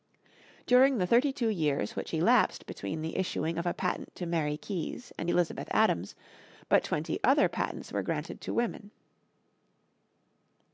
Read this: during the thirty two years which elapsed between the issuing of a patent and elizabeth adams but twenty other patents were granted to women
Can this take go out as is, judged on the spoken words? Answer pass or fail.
fail